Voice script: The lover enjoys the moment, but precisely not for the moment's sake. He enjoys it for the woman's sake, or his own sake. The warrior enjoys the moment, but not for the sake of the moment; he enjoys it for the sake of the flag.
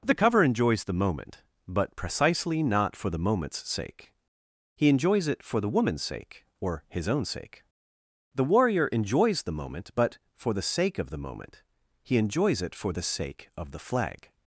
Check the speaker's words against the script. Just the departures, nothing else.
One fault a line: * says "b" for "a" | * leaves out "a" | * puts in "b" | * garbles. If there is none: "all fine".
* says "cover" for "lover"
* leaves out "not"